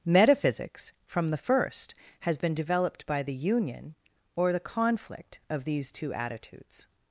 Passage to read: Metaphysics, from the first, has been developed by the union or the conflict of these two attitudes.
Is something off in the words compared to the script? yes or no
no